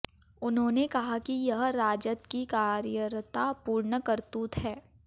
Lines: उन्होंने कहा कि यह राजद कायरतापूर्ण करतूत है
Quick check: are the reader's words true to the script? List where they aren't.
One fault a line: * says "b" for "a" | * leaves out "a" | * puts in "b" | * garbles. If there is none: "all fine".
* puts in "की"